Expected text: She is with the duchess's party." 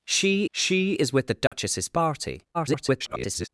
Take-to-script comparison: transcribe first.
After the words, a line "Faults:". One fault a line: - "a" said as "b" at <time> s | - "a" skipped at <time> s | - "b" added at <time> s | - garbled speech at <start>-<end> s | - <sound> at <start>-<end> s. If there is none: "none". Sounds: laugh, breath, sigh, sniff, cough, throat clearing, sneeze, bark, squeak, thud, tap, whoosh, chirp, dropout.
She she is with the duchess's party." [garbled]
Faults:
- "she" added at 0.5 s
- dropout at 1.5-1.5 s
- garbled speech at 2.5-3.5 s